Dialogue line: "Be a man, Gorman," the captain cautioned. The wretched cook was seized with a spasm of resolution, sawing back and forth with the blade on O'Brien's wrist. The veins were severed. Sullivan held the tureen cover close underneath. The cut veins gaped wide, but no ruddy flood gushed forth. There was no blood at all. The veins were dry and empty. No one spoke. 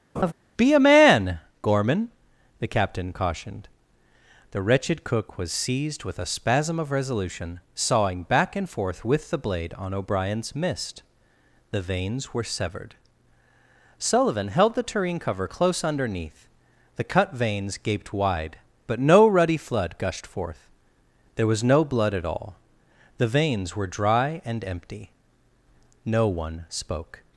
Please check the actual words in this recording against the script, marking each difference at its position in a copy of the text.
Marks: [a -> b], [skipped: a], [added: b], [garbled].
"Be a man, Gorman," the captain cautioned. The wretched cook was seized with a spasm of resolution, sawing back and forth with the blade on O'Brien's [wrist. -> mist] The veins were severed. Sullivan held the tureen cover close underneath. The cut veins gaped wide, but no ruddy flood gushed forth. There was no blood at all. The veins were dry and empty. No one spoke.